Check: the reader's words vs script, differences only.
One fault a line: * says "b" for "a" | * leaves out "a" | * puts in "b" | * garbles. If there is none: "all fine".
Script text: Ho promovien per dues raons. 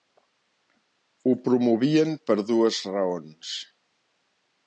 all fine